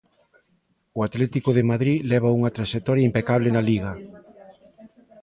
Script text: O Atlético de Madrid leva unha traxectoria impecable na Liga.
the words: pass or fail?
pass